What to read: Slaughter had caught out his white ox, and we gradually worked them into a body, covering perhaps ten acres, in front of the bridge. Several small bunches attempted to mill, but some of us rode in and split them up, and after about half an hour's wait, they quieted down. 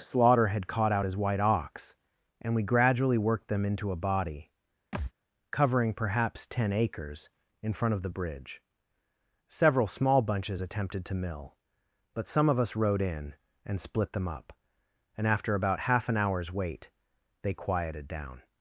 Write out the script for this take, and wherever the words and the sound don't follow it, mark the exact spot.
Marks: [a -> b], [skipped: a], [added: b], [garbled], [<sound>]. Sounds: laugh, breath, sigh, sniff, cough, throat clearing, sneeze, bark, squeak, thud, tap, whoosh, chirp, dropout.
Slaughter had caught out his white ox, and we gradually worked them into a body, [thud] covering perhaps ten acres, in front of the bridge. Several small bunches attempted to mill, but some of us rode in and split them up, and after about half an hour's wait, they quieted down.